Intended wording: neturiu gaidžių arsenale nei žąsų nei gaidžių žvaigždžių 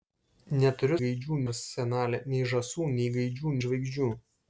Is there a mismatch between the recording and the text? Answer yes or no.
no